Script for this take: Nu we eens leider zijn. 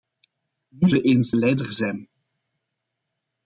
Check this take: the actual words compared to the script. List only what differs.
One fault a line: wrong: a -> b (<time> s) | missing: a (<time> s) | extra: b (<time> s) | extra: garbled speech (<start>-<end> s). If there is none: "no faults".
no faults